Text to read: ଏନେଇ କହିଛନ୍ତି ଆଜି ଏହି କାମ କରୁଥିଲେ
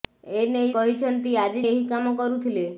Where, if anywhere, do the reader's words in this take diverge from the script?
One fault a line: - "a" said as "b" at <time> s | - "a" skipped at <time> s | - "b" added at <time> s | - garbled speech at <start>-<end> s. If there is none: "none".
none